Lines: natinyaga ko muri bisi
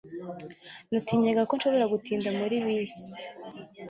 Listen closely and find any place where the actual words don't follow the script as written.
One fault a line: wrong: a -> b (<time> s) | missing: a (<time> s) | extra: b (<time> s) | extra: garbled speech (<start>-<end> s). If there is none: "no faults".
extra: nshobora gutinda (1.6 s)